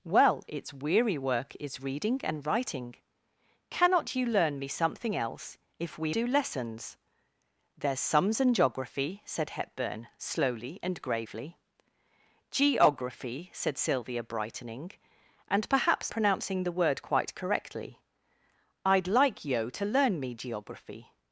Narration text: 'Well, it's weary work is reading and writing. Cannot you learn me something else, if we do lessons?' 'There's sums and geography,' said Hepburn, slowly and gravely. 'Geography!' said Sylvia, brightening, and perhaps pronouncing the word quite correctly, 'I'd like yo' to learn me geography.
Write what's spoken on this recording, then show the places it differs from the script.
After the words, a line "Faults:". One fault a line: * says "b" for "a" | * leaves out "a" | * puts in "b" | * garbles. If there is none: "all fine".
'Well, it's weary work is reading and writing. Cannot you learn me something else, if we do lessons?' 'There's sums and geography,' said Hepburn, slowly and gravely. 'Geography!' said Sylvia, brightening, and perhaps pronouncing the word quite correctly, 'I'd like yo' to learn me geography.
Faults:
all fine